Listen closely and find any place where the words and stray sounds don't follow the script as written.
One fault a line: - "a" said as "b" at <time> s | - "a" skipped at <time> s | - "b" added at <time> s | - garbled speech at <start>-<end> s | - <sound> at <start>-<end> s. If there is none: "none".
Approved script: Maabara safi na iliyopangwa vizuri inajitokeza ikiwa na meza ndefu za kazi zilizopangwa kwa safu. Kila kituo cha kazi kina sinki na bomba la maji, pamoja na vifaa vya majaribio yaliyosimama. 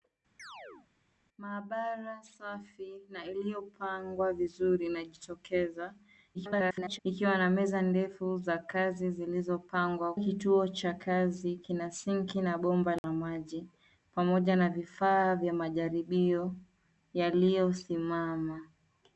- chirp at 0.4-0.9 s
- garbled speech at 6.3-7.0 s
- "kwa safu Kila" skipped at 10.1 s
- dropout at 13.0-13.0 s